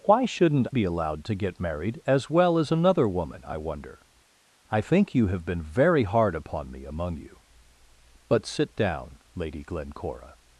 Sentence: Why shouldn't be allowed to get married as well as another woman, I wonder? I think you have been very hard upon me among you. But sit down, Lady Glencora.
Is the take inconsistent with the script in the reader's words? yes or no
no